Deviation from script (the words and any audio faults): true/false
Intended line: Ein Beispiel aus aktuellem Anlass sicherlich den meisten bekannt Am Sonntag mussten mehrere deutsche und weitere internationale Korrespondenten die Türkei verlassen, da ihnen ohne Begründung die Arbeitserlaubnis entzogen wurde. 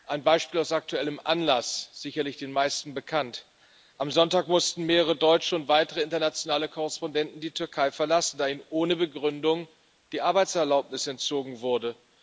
false